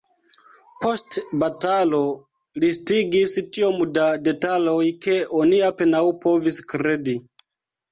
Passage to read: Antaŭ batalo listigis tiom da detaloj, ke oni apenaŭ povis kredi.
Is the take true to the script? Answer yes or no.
no